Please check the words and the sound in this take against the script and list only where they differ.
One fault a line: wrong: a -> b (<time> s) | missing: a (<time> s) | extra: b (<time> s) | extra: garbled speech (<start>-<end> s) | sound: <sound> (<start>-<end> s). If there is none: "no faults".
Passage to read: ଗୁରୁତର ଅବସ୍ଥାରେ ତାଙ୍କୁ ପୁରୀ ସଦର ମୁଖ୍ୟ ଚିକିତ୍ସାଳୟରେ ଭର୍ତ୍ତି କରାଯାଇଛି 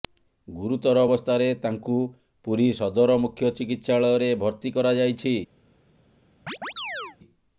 sound: chirp (6.5-7.2 s)